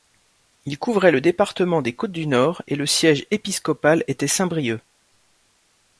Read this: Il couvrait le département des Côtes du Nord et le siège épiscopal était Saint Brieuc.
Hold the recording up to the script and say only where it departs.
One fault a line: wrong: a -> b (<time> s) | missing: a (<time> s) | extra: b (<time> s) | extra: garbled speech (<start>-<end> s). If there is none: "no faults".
no faults